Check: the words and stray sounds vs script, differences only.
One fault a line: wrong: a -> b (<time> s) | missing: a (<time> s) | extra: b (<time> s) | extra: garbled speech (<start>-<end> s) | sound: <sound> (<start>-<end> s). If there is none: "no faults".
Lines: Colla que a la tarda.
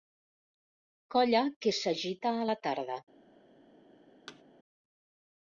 extra: s'agita (1.8 s)
sound: thud (4.3-4.4 s)